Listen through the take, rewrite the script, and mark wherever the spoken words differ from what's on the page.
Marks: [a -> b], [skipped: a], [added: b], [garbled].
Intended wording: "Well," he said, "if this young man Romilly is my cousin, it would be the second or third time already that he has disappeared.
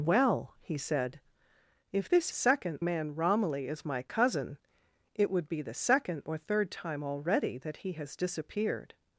"Well," he said, "if this [young -> second] man Romilly is my cousin, it would be the second or third time already that he has disappeared.